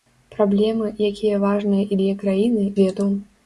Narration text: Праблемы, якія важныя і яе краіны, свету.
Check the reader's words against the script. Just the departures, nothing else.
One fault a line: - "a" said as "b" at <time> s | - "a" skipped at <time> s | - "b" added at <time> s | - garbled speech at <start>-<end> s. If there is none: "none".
none